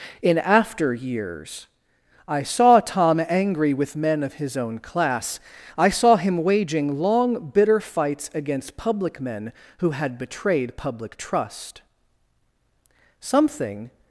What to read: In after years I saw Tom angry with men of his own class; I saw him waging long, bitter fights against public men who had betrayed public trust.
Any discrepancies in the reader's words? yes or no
yes